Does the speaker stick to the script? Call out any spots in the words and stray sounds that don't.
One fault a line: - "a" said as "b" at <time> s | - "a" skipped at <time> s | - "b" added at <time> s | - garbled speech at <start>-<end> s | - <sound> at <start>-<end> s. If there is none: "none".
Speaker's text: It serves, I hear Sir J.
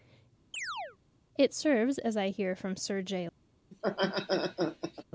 - chirp at 0.5-1.0 s
- "as" added at 2.0 s
- "from" added at 2.6 s
- laugh at 3.7-5.0 s